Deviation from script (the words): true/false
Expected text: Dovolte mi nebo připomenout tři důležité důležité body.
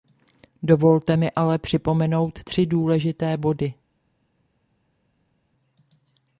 true